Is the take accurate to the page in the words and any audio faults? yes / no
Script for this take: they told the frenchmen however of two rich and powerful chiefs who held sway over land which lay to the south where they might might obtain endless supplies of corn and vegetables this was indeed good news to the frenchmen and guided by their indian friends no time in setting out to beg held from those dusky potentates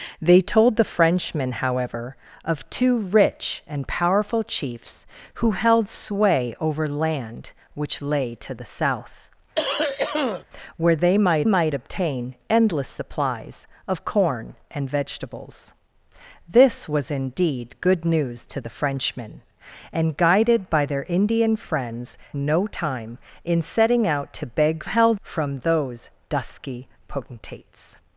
no